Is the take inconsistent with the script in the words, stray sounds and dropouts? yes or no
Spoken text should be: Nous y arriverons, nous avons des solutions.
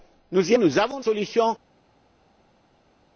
yes